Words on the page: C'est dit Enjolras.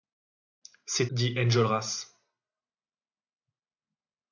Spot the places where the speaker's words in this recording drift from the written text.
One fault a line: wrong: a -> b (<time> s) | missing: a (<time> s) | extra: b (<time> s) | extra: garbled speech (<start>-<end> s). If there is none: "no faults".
no faults